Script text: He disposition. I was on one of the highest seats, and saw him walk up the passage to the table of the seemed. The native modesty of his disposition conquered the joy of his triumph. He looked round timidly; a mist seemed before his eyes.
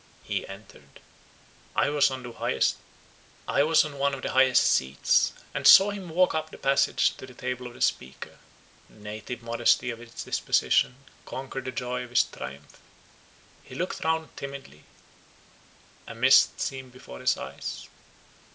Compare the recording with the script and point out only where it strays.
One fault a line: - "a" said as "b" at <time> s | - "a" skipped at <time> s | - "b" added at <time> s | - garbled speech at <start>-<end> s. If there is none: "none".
- "disposition" said as "entered" at 0.5 s
- "seemed" said as "speaker" at 7.8 s